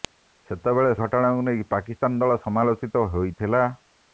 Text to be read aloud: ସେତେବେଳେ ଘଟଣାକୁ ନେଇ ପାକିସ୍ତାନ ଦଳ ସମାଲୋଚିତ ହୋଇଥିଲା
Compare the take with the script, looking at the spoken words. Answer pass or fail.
pass